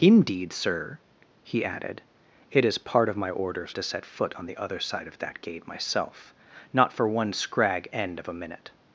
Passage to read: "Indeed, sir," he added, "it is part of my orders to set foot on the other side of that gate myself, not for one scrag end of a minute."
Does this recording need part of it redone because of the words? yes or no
no